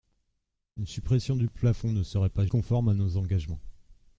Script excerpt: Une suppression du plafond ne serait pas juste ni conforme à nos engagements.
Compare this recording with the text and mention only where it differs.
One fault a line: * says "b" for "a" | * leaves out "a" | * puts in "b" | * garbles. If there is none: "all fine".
* leaves out "juste ni"